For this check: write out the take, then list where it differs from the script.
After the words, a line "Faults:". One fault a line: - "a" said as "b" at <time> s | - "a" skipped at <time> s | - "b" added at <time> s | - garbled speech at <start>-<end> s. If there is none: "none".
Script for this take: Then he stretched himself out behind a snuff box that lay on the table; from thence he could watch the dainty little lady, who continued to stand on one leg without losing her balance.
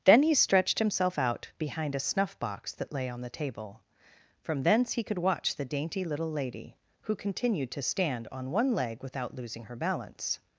Then he stretched himself out behind a snuff box that lay on the table; from thence he could watch the dainty little lady, who continued to stand on one leg without losing her balance.
Faults:
none